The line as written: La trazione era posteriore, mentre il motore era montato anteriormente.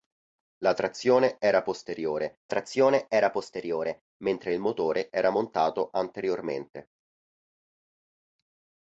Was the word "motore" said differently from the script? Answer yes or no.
no